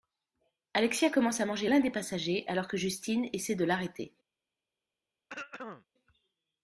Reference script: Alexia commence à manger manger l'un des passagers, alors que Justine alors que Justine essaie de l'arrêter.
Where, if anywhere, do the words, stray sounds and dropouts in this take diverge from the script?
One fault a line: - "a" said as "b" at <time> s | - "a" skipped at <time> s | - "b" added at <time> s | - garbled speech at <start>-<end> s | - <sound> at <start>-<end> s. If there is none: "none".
- "manger" skipped at 1.7 s
- "alors que Justine" skipped at 3.3 s
- throat clearing at 5.3-5.9 s